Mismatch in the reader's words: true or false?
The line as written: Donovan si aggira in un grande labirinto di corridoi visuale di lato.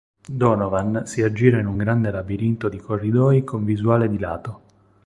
true